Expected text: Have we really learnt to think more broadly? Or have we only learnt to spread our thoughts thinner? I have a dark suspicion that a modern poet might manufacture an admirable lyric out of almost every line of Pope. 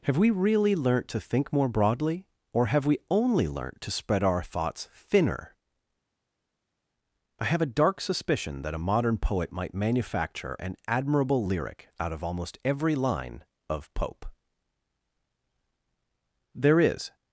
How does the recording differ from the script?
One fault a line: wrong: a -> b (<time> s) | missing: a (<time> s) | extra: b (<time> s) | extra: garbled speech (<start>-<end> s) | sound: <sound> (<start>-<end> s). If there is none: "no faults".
extra: There is (16.5 s)